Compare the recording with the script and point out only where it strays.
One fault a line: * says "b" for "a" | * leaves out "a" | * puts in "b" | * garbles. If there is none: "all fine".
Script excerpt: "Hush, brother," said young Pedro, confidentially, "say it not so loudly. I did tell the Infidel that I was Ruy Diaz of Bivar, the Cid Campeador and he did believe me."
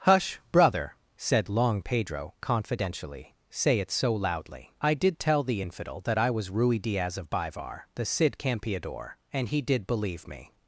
* says "long" for "young"
* leaves out "not"